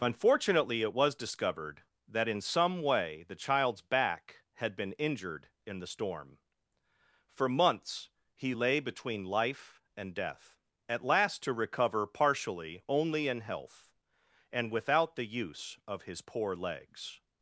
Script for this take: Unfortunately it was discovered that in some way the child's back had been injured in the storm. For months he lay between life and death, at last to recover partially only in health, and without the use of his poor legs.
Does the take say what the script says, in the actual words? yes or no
yes